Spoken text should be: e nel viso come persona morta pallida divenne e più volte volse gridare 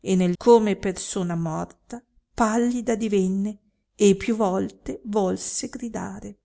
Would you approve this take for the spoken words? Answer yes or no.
no